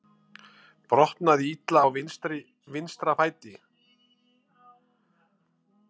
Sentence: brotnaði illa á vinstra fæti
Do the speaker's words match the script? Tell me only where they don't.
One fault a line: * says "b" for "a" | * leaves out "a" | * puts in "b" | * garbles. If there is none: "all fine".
all fine